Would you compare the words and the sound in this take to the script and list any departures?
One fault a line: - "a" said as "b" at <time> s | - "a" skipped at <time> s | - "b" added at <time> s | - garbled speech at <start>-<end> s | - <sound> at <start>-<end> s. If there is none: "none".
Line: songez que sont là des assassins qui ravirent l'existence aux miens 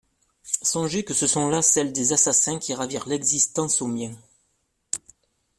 - "ce" added at 1.1 s
- "celles" added at 1.6 s